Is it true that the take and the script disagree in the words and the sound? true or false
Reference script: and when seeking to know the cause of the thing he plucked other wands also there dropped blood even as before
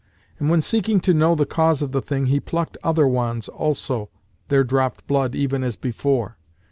false